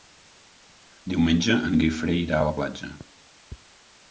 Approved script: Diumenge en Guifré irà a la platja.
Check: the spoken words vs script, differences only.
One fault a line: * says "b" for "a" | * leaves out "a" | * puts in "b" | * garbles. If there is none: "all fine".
all fine